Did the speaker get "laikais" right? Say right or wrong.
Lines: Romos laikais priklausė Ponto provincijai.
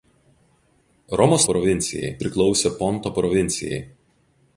wrong